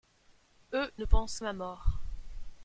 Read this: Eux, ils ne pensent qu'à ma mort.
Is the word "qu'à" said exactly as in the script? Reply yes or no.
no